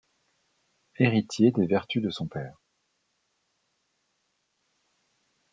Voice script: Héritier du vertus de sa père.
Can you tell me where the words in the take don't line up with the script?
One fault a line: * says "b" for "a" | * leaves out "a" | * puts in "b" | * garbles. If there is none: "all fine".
* says "des" for "du"
* says "son" for "sa"